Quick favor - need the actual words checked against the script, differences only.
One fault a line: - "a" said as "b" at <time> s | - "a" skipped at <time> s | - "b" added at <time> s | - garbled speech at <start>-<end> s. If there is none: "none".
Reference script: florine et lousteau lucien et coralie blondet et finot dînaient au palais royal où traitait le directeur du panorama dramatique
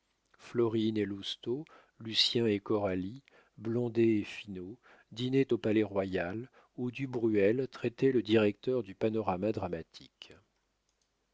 - "du bruel" added at 6.9 s